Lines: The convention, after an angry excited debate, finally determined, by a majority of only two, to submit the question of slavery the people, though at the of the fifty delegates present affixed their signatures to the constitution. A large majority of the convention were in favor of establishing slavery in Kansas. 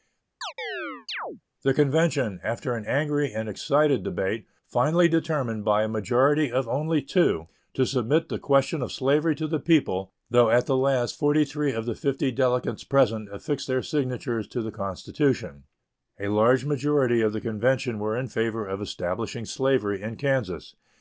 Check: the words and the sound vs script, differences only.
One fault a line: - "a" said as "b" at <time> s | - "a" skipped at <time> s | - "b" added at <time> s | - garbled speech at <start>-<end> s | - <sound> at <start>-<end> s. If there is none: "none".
- chirp at 0.4-1.4 s
- "and" added at 3.3 s
- "to" added at 9.3 s
- "last forty three" added at 10.8 s